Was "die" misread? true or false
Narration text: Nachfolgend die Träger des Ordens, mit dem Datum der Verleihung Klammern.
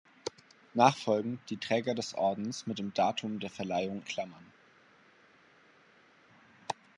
false